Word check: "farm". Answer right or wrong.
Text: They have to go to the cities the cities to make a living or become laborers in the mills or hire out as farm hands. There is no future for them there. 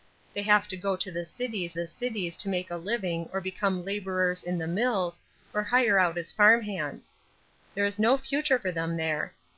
right